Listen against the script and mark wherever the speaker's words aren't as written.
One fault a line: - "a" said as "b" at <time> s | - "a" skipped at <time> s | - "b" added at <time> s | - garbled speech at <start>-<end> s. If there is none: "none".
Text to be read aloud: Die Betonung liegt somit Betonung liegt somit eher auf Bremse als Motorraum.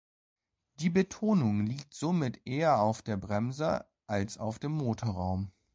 - "Betonung liegt somit" skipped at 2.4 s
- "der" added at 3.0 s
- "auf dem" added at 4.4 s